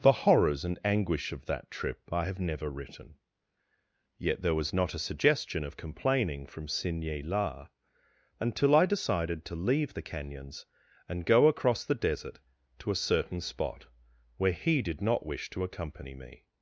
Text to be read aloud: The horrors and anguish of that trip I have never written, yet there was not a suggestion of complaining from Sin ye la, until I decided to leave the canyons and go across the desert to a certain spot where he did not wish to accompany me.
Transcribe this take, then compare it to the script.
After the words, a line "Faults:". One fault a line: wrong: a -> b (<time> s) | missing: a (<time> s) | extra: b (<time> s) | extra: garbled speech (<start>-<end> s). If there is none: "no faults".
The horrors and anguish of that trip I have never written, yet there was not a suggestion of complaining from Sin ye la, until I decided to leave the canyons and go across the desert to a certain spot where he did not wish to accompany me.
Faults:
no faults